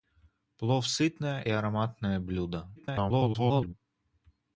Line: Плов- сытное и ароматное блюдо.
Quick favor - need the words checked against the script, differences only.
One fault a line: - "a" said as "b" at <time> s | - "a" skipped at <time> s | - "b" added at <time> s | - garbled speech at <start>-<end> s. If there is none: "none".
- "и" skipped at 1.4 s
- garbled speech at 2.8-3.7 s